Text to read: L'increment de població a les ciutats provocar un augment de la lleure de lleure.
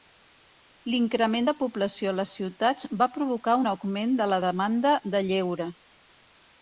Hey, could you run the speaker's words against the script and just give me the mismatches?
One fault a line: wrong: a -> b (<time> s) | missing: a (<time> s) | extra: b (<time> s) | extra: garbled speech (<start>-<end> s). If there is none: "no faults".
extra: va (3.0 s)
wrong: lleure -> demanda (4.5 s)